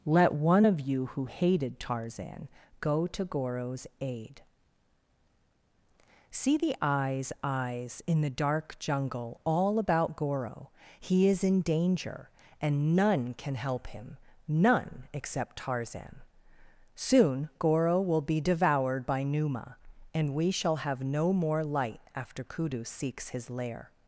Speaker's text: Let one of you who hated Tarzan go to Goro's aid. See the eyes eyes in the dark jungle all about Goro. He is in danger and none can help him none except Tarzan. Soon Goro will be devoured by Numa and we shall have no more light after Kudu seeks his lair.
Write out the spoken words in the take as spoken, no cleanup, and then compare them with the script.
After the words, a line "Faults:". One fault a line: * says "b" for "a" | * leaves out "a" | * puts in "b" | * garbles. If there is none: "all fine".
Let one of you who hated Tarzan go to Goro's aid. See the eyes eyes in the dark jungle all about Goro. He is in danger and none can help him none except Tarzan. Soon Goro will be devoured by Numa and we shall have no more light after Kudu seeks his lair.
Faults:
all fine